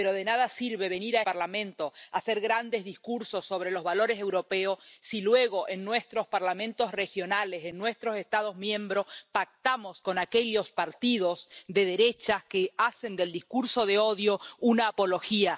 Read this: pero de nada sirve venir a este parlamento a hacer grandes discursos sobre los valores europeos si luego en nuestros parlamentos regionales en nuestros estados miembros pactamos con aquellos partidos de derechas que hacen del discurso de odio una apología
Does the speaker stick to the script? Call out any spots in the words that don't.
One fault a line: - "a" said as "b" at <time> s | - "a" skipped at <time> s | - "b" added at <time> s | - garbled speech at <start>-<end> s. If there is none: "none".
- "este" skipped at 1.2 s